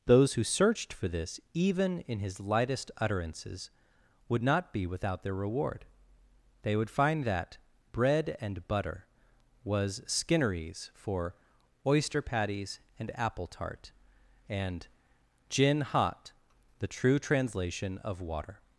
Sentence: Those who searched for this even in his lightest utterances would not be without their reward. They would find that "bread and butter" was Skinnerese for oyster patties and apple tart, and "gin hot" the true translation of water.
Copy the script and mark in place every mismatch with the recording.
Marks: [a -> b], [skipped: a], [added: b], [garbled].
Those who searched for this even in his lightest utterances would not be without their reward. They would find that "bread and butter" was Skinnerese for oyster patties and apple tart, and "gin hot" the true translation of water.